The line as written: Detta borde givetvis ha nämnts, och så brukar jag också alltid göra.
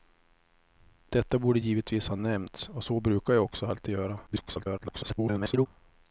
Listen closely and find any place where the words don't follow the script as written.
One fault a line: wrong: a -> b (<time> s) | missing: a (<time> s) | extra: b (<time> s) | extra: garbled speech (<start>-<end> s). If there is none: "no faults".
extra: garbled speech (4.3-5.7 s)